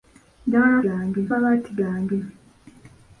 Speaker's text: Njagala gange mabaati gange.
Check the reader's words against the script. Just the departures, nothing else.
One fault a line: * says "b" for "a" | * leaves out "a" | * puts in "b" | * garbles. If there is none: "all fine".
all fine